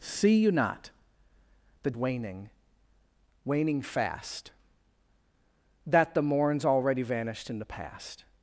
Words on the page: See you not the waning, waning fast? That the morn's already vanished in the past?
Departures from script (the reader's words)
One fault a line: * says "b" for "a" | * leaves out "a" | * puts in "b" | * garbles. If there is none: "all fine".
all fine